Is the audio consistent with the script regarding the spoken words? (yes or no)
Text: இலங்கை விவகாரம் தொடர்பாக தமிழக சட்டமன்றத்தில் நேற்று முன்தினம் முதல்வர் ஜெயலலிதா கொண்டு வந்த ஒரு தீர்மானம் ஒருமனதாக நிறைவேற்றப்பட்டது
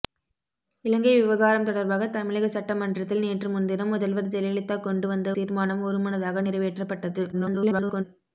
no